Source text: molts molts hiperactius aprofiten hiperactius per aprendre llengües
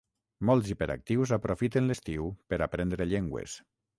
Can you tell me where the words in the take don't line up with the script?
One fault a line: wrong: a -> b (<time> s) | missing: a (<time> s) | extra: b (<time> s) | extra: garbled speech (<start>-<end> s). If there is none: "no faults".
missing: molts (0.7 s)
wrong: hiperactius -> l'estiu (1.9 s)